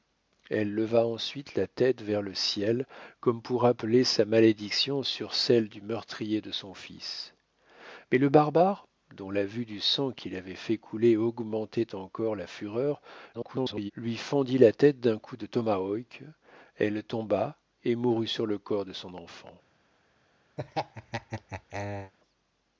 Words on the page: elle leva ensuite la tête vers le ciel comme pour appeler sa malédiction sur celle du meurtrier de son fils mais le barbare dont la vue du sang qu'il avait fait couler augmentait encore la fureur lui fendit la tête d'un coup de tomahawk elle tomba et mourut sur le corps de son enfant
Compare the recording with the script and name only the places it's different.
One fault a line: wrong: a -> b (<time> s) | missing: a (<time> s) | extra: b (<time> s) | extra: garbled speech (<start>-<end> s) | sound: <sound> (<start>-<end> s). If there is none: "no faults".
extra: garbled speech (13.3-13.9 s)
sound: laugh (20.6-22.1 s)